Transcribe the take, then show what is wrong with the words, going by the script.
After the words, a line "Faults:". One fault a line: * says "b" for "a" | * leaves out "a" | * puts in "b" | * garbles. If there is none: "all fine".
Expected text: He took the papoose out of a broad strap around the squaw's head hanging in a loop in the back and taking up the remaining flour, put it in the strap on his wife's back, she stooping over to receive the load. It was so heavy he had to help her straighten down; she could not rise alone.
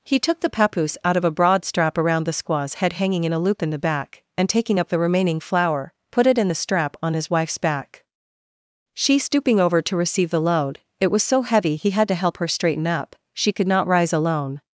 He took the papoose out of a broad strap around the squaw's head hanging in a loop in the back and taking up the remaining flour, put it in the strap on his wife's back, she stooping over to receive the load. It was so heavy he had to help her straighten up; she could not rise alone.
Faults:
* says "up" for "down"